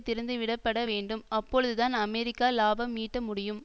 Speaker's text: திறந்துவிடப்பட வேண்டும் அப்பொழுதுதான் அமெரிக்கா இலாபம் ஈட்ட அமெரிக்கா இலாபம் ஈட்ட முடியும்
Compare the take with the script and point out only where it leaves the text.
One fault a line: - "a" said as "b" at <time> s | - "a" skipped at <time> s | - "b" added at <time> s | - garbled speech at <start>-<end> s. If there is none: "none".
- "அமெரிக்கா இலாபம் ஈட்ட" skipped at 3.2 s